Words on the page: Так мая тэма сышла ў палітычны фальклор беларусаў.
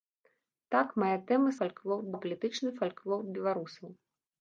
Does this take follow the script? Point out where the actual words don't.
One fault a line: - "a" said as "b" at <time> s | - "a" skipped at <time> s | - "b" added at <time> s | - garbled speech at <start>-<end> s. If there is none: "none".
- "сышла" said as "фальклор" at 1.6 s